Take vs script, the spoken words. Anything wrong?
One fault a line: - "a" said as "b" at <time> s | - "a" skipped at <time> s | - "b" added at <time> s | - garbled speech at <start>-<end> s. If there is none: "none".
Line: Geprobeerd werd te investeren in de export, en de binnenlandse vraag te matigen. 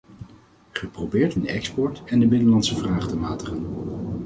- "werd te investeren" skipped at 1.4 s